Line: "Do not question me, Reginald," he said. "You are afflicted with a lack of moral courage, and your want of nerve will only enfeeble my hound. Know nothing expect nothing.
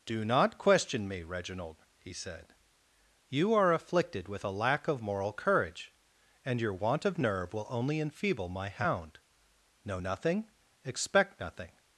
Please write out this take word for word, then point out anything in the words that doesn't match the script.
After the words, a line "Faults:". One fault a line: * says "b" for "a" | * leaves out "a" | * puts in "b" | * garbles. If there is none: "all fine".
"Do not question me, Reginald," he said. "You are afflicted with a lack of moral courage, and your want of nerve will only enfeeble my hound. Know nothing expect nothing.
Faults:
all fine